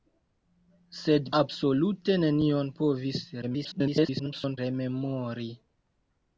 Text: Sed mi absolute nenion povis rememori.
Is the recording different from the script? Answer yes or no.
yes